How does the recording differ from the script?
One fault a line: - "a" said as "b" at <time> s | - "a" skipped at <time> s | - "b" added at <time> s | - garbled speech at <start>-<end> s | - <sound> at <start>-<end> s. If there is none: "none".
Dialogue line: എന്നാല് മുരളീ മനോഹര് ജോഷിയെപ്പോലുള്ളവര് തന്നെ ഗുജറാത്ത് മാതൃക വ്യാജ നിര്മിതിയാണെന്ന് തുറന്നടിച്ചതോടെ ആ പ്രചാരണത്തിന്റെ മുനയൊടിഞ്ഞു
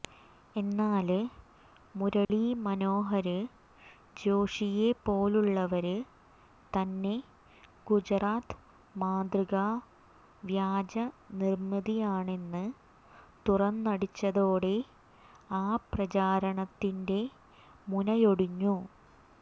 - dropout at 2.2-2.3 s